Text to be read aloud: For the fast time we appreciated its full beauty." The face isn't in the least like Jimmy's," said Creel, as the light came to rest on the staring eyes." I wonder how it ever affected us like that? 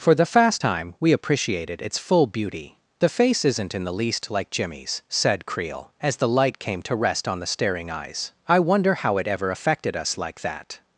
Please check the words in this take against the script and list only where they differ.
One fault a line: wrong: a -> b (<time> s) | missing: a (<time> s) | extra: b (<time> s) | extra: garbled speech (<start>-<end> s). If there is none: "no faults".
no faults